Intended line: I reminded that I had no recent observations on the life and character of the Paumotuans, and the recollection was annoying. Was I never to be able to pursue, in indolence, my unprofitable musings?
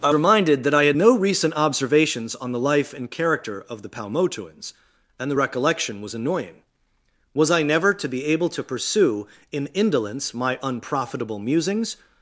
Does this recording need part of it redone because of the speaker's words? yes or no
no